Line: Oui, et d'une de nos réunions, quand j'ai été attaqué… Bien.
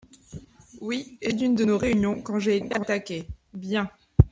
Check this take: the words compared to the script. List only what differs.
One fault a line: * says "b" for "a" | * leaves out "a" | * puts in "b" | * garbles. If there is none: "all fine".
all fine